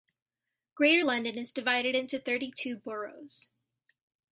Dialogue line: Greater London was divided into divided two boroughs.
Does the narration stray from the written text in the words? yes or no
yes